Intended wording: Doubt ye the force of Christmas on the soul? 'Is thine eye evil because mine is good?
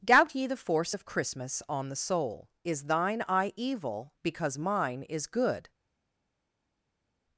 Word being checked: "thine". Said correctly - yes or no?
yes